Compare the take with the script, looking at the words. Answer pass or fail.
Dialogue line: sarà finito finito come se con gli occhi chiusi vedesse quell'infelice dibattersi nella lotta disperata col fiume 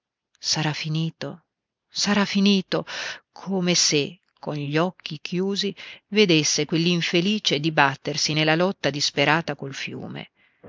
fail